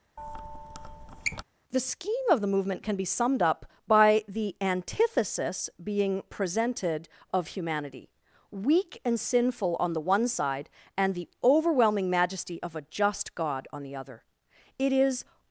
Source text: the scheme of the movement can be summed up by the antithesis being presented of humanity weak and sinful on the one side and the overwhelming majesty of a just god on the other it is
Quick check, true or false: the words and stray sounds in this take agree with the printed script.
false